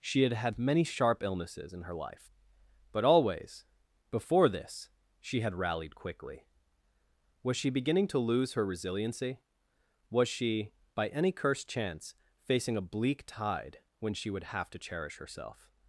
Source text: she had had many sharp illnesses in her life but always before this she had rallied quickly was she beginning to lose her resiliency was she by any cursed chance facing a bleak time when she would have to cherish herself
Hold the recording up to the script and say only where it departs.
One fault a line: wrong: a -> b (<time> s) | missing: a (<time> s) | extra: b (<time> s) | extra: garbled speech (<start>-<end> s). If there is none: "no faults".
wrong: time -> tide (13.3 s)